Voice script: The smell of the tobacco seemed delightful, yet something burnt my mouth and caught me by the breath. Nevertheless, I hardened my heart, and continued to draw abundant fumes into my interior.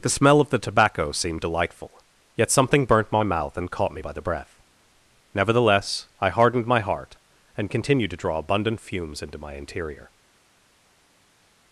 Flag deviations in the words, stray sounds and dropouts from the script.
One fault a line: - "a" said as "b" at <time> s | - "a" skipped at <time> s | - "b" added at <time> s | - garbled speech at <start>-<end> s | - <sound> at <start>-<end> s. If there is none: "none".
none